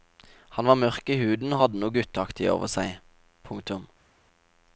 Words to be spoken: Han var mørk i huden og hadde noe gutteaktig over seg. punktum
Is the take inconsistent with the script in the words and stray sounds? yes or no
no